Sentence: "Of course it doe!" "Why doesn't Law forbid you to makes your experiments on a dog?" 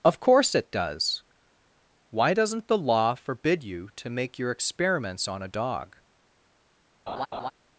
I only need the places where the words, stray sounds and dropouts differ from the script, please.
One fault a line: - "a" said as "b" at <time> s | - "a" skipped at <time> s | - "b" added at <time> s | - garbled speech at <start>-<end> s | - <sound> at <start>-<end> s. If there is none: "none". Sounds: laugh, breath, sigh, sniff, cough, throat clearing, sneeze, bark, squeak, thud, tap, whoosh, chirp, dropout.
- "doe" said as "does" at 0.7 s
- "the" added at 2.7 s
- "makes" said as "make" at 4.1 s
- laugh at 7.1-7.5 s